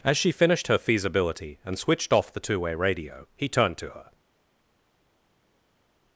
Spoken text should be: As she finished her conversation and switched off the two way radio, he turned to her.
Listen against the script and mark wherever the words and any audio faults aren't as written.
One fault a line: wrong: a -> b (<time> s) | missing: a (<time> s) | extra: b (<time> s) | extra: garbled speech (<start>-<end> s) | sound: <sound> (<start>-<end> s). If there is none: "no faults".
wrong: conversation -> feasibility (0.8 s)